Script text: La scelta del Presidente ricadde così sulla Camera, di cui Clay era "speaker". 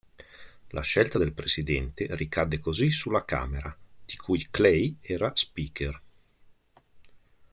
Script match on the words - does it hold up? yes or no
yes